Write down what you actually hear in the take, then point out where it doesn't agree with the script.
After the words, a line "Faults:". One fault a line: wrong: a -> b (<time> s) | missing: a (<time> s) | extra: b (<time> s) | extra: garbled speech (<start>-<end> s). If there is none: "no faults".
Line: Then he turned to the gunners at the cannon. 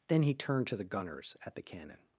Then he turned to the gunners at the cannon.
Faults:
no faults